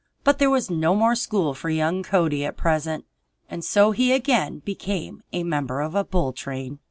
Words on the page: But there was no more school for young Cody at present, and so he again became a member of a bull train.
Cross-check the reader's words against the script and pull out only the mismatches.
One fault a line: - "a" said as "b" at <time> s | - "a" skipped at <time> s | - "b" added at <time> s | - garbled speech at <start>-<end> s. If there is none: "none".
none